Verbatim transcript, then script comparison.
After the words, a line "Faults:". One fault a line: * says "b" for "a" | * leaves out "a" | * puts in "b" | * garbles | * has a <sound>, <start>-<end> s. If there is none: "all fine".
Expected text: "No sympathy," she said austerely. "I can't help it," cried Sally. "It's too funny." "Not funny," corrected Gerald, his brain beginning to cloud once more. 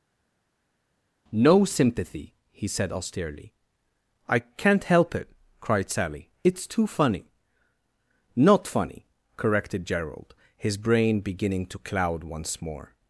"No sympathy," he said austerely. "I can't help it," cried Sally. "It's too funny." "Not funny," corrected Gerald, his brain beginning to cloud once more.
Faults:
* says "he" for "she"